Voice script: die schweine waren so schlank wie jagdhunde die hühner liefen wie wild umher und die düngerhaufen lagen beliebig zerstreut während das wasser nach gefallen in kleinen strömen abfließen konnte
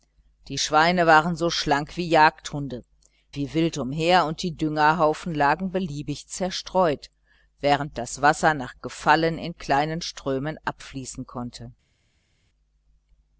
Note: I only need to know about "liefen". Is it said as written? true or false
false